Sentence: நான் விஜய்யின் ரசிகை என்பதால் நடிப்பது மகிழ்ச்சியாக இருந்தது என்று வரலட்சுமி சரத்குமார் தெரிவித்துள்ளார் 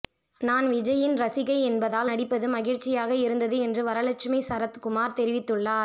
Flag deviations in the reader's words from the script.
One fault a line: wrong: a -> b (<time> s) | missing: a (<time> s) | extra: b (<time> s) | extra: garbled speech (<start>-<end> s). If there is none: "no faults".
no faults